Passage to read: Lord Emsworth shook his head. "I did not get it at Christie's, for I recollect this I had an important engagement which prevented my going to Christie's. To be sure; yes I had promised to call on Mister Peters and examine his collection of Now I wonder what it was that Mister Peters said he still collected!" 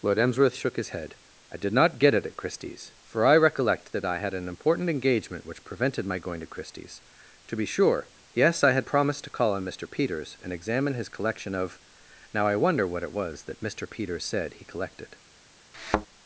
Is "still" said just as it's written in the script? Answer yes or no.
no